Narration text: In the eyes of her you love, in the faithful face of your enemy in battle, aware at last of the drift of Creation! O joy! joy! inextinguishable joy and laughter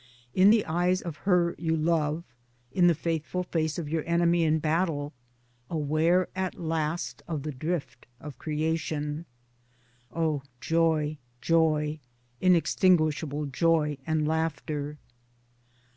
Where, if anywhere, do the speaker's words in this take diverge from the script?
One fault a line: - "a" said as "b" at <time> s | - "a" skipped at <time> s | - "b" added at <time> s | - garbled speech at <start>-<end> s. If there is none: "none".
none